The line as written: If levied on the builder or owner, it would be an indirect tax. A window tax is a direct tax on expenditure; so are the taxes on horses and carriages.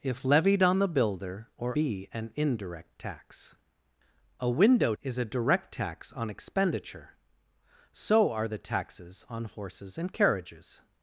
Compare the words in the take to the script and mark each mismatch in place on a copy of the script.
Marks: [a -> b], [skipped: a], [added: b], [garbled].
If levied on the builder or [skipped: owner, it would] be an indirect tax. A window [skipped: tax] is a direct tax on expenditure; so are the taxes on horses and carriages.